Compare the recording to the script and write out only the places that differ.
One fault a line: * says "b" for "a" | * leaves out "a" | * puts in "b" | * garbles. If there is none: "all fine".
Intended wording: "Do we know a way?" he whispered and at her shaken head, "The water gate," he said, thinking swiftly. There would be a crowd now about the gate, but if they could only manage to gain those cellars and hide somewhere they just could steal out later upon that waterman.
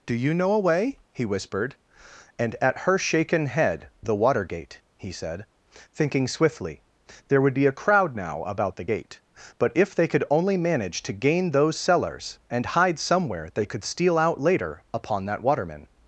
* says "you" for "we"
* leaves out "just"